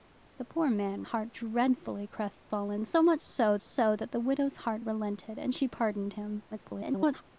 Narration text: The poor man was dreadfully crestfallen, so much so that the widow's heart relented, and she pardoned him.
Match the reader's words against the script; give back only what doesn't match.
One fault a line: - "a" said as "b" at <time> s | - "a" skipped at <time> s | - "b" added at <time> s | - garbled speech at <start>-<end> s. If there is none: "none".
- "was" said as "heart" at 1.0 s
- "so" added at 3.6 s
- garbled speech at 6.5-7.2 s